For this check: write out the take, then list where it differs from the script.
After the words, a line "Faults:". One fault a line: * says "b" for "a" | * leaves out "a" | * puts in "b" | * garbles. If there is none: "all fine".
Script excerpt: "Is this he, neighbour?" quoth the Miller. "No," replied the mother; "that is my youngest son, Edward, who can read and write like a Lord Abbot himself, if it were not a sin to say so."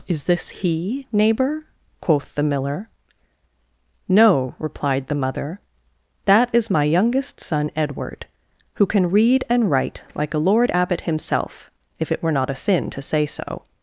"Is this he, neighbour?" quoth the Miller. "No," replied the mother; "that is my youngest son, Edward, who can read and write like a Lord Abbot himself, if it were not a sin to say so."
Faults:
all fine